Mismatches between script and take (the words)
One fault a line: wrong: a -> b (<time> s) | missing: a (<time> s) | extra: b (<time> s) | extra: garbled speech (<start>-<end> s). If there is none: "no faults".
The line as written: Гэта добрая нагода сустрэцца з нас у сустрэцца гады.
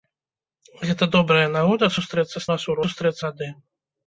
no faults